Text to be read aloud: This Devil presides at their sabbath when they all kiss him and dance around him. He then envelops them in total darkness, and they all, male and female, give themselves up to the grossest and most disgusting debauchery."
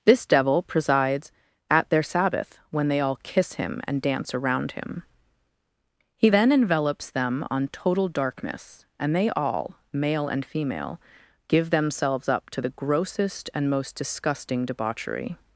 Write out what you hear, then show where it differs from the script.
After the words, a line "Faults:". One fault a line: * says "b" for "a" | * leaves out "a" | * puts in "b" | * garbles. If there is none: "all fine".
This Devil presides at their sabbath when they all kiss him and dance around him. He then envelops them on total darkness, and they all, male and female, give themselves up to the grossest and most disgusting debauchery."
Faults:
* says "on" for "in"